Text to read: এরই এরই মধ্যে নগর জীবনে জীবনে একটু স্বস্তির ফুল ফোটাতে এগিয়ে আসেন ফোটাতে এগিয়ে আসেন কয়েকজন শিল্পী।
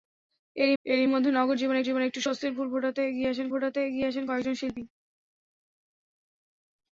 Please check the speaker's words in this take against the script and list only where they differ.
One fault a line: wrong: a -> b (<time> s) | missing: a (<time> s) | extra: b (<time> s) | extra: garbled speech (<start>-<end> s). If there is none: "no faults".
no faults